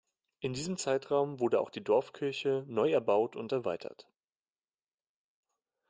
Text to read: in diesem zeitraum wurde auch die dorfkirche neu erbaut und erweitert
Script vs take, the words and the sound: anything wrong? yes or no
no